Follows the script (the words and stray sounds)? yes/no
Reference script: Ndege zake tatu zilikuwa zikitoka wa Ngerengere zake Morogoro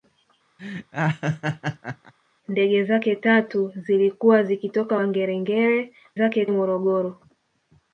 no